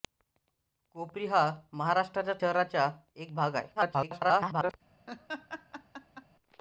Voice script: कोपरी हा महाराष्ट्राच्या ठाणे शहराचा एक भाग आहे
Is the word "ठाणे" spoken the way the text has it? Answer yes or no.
no